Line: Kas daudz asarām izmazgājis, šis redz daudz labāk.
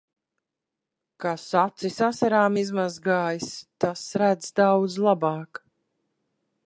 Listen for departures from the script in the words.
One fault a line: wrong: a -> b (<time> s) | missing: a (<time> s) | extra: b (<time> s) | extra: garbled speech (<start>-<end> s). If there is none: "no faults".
wrong: daudz -> acis (1.6 s)
wrong: šis -> tas (3.8 s)